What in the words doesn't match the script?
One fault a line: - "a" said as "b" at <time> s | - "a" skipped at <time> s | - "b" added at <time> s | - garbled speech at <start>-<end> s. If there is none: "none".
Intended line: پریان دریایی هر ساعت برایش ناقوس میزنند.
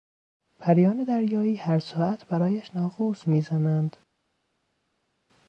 none